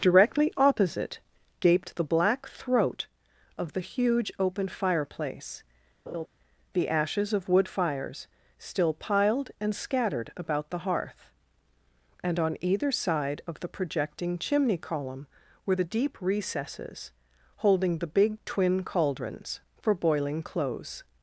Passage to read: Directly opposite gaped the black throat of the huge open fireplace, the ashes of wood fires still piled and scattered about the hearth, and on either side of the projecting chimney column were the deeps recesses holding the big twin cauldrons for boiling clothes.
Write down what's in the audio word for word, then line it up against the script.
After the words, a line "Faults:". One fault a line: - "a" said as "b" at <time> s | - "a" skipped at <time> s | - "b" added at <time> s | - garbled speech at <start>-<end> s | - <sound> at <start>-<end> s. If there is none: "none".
Directly opposite gaped the black throat of the huge open fireplace, the ashes of wood fires still piled and scattered about the hearth, and on either side of the projecting chimney column were the deep recesses holding the big twin cauldrons for boiling clothes.
Faults:
- laugh at 6.1-6.3 s
- "deeps" said as "deep" at 15.9 s